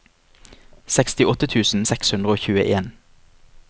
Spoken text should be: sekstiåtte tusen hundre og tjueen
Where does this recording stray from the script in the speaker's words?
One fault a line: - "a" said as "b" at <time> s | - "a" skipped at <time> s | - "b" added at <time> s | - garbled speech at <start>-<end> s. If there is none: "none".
- "seks" added at 1.9 s